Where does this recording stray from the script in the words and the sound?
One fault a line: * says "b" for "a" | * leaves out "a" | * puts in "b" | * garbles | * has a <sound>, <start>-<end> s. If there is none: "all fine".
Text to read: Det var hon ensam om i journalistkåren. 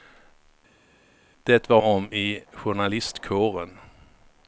* leaves out "hon ensam"